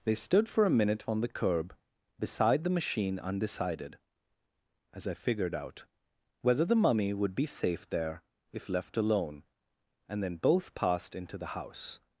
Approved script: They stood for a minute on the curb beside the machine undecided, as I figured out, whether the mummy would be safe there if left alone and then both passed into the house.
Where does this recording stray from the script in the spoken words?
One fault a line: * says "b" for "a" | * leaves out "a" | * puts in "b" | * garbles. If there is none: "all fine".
all fine